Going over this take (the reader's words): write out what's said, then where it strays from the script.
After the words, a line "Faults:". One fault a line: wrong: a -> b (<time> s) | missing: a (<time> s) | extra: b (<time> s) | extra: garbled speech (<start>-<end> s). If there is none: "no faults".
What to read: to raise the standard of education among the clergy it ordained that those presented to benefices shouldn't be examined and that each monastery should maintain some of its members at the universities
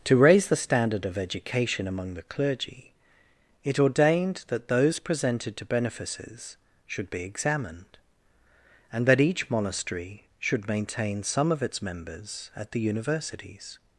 to raise the standard of education among the clergy it ordained that those presented to benefices should be examined and that each monastery should maintain some of its members at the universities
Faults:
wrong: shouldn't -> should (6.9 s)